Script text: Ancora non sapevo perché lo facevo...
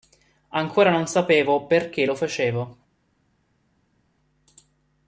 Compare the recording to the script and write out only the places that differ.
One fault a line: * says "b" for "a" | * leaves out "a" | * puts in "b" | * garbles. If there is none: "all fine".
all fine